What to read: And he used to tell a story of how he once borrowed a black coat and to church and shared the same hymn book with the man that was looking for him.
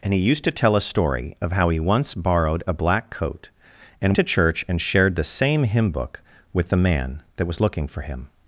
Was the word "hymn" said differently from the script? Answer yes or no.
no